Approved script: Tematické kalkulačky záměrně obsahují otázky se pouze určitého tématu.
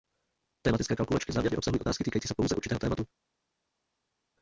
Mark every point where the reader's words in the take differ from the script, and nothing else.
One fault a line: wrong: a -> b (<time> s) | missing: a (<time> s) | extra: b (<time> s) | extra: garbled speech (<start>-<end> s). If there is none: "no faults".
extra: týkající (2.0 s)